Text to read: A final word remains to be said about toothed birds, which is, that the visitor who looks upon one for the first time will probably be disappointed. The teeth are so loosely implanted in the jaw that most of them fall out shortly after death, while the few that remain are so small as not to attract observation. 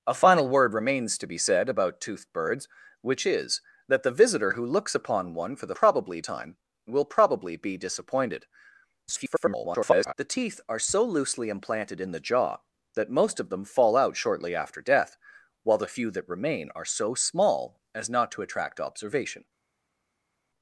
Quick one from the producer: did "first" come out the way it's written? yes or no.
no